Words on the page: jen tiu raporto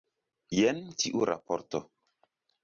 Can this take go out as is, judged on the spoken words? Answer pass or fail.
pass